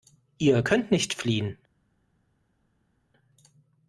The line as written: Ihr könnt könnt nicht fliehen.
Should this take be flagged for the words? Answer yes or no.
yes